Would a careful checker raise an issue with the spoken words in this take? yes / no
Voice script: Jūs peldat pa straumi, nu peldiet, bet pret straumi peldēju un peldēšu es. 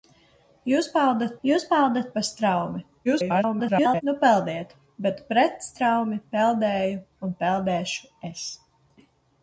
yes